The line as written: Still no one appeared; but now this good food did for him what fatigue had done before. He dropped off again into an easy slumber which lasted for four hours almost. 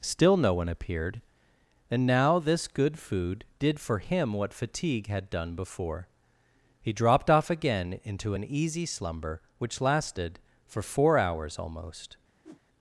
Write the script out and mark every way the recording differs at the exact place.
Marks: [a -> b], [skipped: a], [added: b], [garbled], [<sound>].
Still no one appeared; [but -> and] now this good food did for him what fatigue had done before. He dropped off again into an easy slumber which lasted for four hours almost. [whoosh]